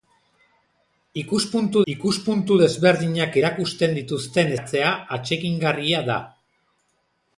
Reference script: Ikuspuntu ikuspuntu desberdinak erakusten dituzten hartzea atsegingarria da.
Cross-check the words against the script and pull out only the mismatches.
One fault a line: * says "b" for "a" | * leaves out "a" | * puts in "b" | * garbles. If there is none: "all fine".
all fine